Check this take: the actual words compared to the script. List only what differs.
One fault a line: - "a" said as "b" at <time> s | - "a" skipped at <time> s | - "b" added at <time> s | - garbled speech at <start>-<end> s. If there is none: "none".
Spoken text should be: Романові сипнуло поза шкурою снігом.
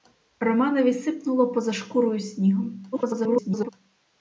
- garbled speech at 2.9-3.7 s